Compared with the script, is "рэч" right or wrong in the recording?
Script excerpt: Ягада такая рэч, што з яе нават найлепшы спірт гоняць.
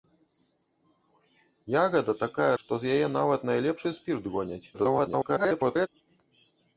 wrong